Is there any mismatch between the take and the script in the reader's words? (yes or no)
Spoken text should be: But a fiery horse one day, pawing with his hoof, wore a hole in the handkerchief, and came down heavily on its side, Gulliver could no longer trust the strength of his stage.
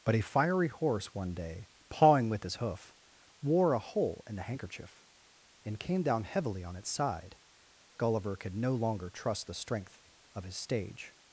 no